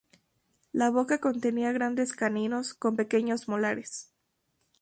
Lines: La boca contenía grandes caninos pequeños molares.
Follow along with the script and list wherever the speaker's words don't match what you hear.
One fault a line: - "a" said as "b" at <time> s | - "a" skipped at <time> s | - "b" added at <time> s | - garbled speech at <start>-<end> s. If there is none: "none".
- "con" added at 2.7 s